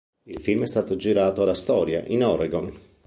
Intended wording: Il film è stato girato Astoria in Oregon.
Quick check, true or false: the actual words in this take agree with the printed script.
true